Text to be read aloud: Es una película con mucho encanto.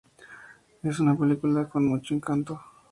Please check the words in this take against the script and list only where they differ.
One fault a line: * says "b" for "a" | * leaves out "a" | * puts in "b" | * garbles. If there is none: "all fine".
all fine